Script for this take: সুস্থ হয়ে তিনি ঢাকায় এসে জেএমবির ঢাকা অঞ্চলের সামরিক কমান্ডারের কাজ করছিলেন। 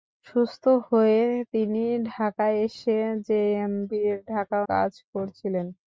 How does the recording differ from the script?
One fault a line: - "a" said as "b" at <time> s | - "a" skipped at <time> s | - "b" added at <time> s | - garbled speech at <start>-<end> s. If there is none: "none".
- "অঞ্চলের সামরিক কমান্ডারের" skipped at 4.6 s